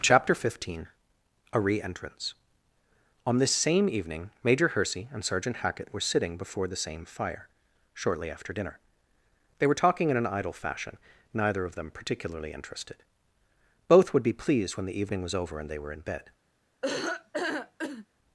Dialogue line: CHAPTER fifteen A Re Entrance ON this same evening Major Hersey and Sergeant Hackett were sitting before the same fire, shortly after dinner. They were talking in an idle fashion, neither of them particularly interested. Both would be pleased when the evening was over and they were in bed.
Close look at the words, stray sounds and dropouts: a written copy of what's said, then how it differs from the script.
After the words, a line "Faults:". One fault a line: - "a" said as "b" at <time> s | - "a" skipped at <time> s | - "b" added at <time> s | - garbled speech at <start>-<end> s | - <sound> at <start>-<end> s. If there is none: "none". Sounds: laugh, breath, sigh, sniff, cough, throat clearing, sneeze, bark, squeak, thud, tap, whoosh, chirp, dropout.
CHAPTER fifteen A Re Entrance ON this same evening Major Hersey and Sergeant Hackett were sitting before the same fire, shortly after dinner. They were talking in an idle fashion, neither of them particularly interested. Both would be pleased when the evening was over and they were in bed.
Faults:
- laugh at 16.8-18.1 s